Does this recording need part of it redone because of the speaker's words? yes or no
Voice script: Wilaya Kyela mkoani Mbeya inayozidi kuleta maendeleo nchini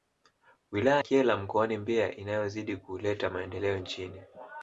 no